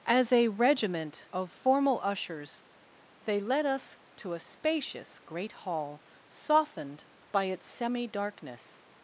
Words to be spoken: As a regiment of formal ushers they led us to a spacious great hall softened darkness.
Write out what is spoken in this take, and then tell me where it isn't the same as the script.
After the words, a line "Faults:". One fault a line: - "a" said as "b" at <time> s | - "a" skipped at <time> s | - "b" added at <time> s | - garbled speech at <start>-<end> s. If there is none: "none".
As a regiment of formal ushers they led us to a spacious great hall softened by its semi darkness.
Faults:
- "by its semi" added at 7.3 s